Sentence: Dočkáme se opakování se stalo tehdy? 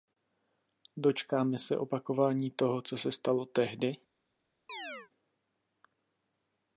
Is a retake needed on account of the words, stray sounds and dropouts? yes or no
yes